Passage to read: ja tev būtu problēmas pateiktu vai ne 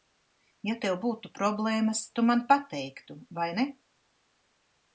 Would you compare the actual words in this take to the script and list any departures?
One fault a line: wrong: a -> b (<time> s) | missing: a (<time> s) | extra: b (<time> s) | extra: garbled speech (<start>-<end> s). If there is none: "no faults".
extra: tu man (2.1 s)